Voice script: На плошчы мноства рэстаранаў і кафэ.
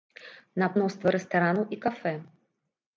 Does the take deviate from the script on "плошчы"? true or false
true